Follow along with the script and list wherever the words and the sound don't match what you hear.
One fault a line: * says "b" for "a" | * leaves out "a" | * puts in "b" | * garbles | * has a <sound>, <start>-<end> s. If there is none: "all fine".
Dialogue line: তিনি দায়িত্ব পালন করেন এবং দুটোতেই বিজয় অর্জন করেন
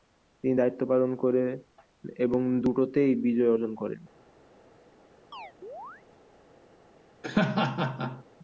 * has a chirp, 5.3-6.0 s
* has a laugh, 7.2-8.2 s